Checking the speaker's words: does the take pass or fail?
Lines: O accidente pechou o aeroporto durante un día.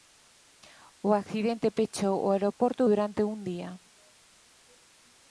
pass